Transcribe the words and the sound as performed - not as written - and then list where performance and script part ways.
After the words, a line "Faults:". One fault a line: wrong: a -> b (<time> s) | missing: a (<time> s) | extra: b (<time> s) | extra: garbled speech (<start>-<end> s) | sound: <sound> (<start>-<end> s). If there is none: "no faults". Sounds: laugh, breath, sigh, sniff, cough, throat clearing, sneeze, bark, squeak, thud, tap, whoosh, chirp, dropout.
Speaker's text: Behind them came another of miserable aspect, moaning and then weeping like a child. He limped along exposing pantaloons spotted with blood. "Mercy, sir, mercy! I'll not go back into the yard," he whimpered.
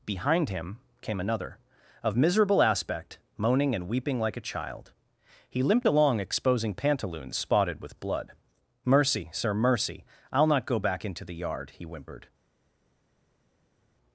Behind him came another of miserable aspect, moaning and weeping like a child. He limped along exposing pantaloons spotted with blood. "Mercy, sir, mercy! I'll not go back into the yard," he whimpered.
Faults:
wrong: them -> him (0.5 s)
missing: then (3.9 s)